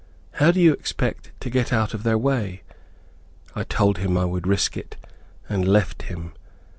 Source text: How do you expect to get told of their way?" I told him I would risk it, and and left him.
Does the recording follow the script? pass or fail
fail